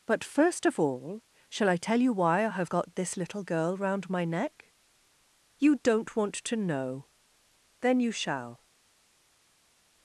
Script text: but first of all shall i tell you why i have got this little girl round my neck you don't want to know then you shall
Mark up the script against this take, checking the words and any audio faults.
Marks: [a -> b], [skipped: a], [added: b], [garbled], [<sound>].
but first of all shall i tell you why i have got this little girl round my neck you don't want to know then you shall